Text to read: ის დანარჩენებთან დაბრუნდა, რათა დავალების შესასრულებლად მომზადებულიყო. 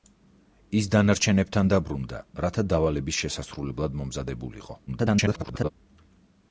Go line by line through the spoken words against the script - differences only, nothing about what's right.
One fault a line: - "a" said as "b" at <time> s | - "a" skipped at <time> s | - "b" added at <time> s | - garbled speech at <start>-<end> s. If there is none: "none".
- garbled speech at 4.9-5.7 s